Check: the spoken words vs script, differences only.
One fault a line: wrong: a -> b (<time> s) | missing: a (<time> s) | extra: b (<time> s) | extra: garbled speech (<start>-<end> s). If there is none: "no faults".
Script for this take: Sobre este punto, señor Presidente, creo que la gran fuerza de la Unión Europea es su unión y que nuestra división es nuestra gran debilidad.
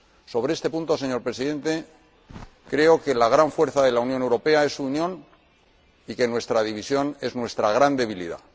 no faults